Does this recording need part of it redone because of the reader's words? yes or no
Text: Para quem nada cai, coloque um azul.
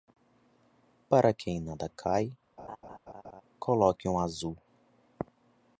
no